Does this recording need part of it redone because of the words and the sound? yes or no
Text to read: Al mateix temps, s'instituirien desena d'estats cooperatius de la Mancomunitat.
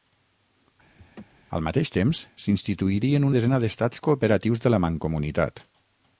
yes